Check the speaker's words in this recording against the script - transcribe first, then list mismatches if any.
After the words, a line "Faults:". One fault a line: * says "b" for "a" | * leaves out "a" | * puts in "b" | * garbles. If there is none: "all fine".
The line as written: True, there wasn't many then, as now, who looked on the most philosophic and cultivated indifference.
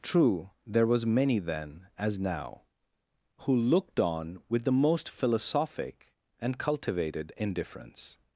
True, there was many then, as now, who looked on with the most philosophic and cultivated indifference.
Faults:
* says "was" for "wasn't"
* puts in "with"